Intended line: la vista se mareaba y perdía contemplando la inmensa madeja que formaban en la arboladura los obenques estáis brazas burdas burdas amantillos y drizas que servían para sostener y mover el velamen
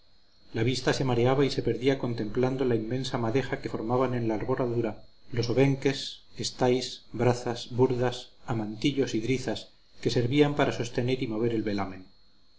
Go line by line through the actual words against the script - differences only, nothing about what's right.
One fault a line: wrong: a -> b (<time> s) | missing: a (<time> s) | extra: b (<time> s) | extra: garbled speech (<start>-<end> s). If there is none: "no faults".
extra: se (1.5 s)
missing: burdas (8.3 s)